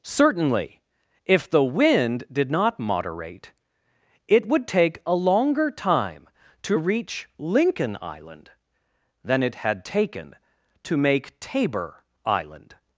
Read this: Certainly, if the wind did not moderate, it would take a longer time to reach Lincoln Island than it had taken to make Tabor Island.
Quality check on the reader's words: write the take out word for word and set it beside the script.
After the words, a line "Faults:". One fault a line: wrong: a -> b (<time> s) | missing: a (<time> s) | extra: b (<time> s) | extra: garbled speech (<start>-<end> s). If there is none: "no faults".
Certainly, if the wind did not moderate, it would take a longer time to reach Lincoln Island than it had taken to make Tabor Island.
Faults:
no faults